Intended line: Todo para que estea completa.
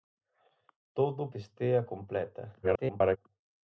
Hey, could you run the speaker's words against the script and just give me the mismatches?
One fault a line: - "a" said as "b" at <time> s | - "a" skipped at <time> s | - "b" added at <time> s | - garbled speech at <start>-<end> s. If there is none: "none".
- "para" skipped at 1.3 s
- garbled speech at 2.6-3.2 s